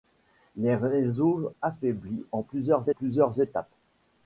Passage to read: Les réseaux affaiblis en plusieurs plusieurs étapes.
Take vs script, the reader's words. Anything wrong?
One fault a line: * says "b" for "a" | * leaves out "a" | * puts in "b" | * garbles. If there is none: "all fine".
all fine